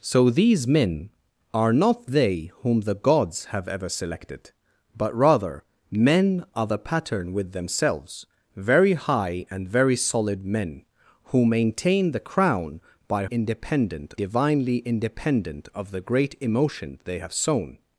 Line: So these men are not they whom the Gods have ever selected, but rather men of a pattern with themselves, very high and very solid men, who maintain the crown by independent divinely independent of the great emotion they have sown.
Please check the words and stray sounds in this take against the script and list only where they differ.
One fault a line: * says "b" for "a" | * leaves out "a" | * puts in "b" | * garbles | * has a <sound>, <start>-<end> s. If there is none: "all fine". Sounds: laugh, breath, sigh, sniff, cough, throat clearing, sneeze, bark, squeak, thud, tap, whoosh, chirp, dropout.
all fine